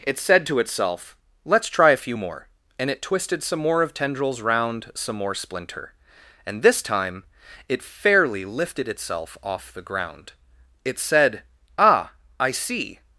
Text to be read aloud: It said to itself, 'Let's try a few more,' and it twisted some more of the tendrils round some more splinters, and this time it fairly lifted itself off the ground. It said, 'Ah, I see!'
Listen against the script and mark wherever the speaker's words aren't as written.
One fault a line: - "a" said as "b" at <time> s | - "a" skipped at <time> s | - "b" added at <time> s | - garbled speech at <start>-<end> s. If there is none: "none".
- "the" skipped at 3.9 s
- "splinters" said as "splinter" at 5.3 s